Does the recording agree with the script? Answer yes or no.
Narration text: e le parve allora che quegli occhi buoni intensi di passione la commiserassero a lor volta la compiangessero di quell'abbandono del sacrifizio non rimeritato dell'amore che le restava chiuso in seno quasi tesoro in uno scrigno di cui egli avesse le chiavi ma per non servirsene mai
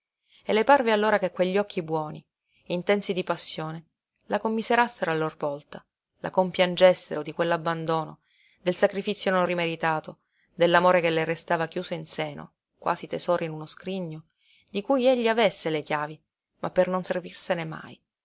yes